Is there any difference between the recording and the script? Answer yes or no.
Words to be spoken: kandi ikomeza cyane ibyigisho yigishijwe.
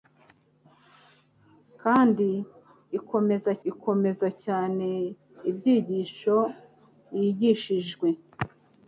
yes